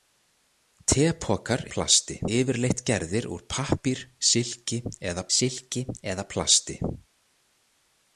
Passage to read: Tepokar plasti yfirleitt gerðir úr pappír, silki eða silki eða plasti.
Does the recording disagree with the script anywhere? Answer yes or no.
no